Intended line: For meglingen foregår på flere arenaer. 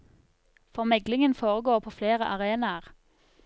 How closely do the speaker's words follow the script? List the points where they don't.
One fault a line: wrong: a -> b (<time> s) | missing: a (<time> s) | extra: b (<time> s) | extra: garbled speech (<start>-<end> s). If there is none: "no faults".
no faults